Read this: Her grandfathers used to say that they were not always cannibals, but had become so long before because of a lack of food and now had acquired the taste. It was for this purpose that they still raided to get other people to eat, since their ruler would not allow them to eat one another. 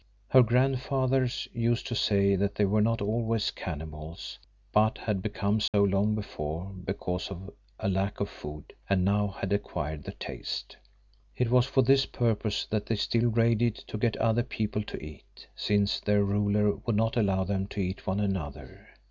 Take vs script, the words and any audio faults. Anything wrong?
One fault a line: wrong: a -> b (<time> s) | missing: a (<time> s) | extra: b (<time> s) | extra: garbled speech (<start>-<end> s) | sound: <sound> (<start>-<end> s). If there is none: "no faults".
sound: dropout (5.7-5.7 s)